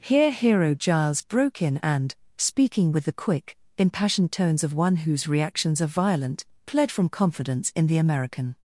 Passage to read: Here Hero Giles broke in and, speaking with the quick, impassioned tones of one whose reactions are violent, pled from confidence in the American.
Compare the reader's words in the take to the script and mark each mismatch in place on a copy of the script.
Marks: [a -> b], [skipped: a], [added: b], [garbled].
Here Hero Giles broke in and, speaking with the quick, impassioned tones of one whose reactions are violent, pled from confidence in the American.